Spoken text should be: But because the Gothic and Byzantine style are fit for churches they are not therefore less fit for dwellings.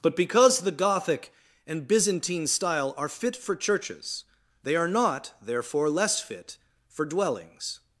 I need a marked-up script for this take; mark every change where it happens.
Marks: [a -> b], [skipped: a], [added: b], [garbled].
But because the Gothic and Byzantine style are fit for churches they are not therefore less fit for dwellings.